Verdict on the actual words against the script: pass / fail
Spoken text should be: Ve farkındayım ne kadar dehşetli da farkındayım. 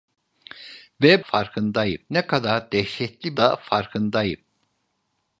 pass